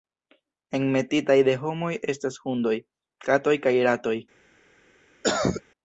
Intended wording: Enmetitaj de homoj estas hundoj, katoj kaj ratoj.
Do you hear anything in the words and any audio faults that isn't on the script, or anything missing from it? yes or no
yes